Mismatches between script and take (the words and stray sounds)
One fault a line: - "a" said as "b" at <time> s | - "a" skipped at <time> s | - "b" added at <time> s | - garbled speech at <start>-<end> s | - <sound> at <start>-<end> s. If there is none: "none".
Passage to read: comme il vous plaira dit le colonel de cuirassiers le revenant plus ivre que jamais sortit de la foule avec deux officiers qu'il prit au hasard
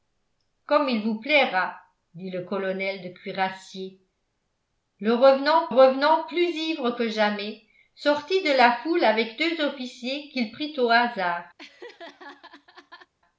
- "revenant" added at 5.7 s
- laugh at 11.6-13.1 s